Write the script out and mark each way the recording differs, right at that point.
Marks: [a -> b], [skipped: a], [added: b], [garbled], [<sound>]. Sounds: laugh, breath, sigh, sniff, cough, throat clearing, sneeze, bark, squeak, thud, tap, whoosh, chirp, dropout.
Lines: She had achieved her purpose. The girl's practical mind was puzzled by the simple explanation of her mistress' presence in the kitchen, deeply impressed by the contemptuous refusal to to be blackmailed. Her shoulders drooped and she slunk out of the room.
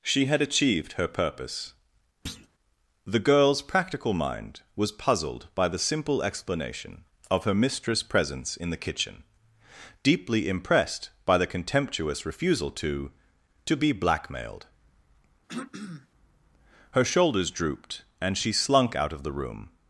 She had achieved her purpose. [thud] The girl's practical mind was puzzled by the simple explanation of her mistress' presence in the kitchen, deeply impressed by the contemptuous refusal to to be blackmailed. [throat clearing] Her shoulders drooped and she slunk out of the room.